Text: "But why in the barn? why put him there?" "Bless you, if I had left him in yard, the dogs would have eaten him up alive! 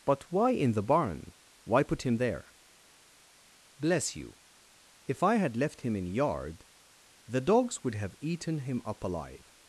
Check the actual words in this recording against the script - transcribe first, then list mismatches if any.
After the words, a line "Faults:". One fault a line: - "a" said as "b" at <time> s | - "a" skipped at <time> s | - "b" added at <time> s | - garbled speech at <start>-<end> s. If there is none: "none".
"But why in the barn? why put him there?" "Bless you, if I had left him in yard, the dogs would have eaten him up alive!
Faults:
none